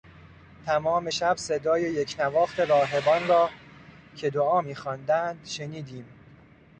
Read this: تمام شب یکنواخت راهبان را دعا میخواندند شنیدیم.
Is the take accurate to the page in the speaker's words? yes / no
no